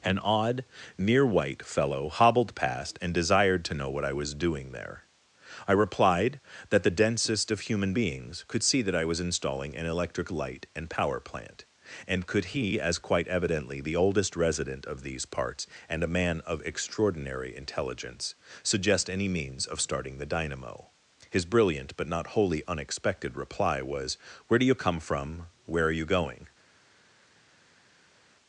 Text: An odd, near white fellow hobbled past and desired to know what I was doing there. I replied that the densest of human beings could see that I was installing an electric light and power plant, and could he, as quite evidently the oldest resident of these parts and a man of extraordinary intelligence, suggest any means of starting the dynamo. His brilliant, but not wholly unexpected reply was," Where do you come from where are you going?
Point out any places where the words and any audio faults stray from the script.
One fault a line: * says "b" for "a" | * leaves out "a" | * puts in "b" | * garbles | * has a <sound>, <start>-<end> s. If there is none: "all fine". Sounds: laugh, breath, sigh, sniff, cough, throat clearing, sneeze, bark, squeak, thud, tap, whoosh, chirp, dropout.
all fine